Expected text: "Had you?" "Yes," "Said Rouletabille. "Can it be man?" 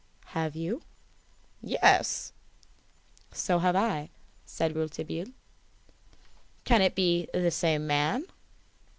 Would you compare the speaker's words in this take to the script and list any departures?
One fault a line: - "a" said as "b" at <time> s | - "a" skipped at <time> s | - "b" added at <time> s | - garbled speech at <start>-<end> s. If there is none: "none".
- "Had" said as "Have" at 0.3 s
- "So have I" added at 3.3 s
- "the same" added at 7.3 s